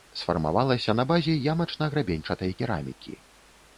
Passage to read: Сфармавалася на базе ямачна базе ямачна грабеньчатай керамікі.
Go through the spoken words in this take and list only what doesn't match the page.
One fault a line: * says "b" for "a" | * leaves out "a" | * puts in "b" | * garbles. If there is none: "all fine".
* leaves out "базе ямачна"